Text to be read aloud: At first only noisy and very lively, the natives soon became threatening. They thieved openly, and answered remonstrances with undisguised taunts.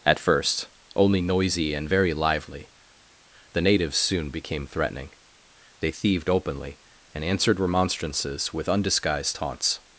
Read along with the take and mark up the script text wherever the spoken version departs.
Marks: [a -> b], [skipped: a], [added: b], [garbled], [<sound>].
At first only noisy and very lively, the natives soon became threatening. They thieved openly, and answered remonstrances with undisguised taunts.